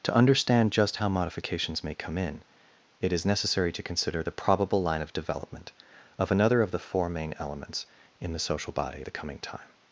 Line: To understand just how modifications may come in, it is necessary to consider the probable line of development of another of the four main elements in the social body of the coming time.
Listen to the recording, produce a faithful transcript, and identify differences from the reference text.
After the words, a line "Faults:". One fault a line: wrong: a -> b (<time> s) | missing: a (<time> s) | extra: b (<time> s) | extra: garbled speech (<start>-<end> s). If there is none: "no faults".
To understand just how modifications may come in, it is necessary to consider the probable line of development of another of the four main elements in the social body the coming time.
Faults:
missing: of (9.0 s)